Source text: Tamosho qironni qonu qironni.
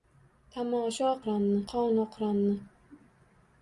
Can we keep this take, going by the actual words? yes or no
yes